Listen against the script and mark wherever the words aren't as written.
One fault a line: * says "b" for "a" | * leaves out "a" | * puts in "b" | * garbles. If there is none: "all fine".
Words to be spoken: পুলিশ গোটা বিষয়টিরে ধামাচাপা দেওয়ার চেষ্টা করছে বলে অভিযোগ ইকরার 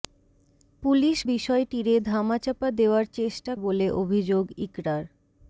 * leaves out "গোটা"
* leaves out "করছে"